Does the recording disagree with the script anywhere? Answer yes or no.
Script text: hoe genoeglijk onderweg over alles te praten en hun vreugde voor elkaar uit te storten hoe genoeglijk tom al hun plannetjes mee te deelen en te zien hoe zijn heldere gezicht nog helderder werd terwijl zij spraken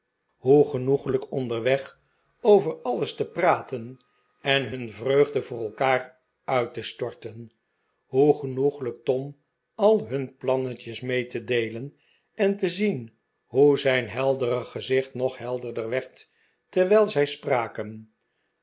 no